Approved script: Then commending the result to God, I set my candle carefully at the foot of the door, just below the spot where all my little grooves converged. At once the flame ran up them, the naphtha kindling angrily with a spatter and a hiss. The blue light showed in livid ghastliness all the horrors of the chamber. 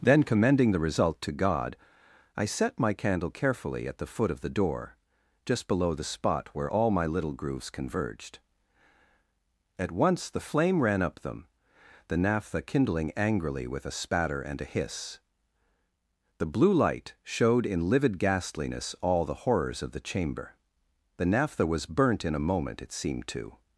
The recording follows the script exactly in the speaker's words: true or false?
false